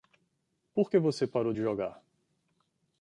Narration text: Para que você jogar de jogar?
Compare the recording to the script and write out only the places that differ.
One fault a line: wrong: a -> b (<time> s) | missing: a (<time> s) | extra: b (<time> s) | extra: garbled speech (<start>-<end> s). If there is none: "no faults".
wrong: Para -> Por (0.7 s)
wrong: jogar -> parou (1.3 s)